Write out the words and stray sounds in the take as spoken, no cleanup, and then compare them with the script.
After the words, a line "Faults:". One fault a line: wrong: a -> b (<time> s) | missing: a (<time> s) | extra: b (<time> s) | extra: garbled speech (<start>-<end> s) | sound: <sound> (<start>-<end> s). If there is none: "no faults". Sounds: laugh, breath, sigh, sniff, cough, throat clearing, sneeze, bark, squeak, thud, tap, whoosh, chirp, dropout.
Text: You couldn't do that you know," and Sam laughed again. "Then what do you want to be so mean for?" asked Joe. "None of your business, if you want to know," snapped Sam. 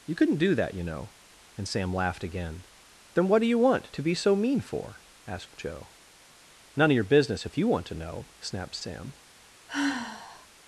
You couldn't do that you know," and Sam laughed again. "Then what do you want to be so mean for?" asked Joe. "None of your business, if you want to know," snapped Sam.
Faults:
sound: sigh (9.7-10.5 s)